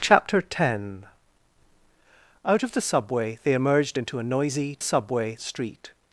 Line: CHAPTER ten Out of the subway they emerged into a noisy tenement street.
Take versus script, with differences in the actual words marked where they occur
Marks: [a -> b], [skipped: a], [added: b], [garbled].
CHAPTER ten Out of the subway they emerged into a noisy [tenement -> subway] street.